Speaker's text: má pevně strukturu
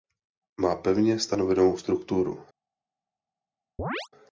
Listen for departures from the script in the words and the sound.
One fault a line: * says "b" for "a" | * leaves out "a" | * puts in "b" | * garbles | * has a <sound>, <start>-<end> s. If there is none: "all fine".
* puts in "stanovenou"
* has a chirp, 3.8-4.1 s